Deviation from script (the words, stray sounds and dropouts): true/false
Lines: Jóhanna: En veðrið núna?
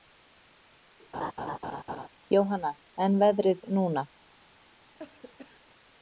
true